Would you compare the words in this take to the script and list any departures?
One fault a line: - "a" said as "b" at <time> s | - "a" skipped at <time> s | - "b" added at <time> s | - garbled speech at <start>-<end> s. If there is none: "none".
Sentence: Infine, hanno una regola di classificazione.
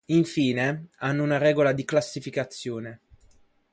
none